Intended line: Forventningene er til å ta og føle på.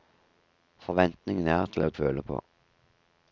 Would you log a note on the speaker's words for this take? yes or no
yes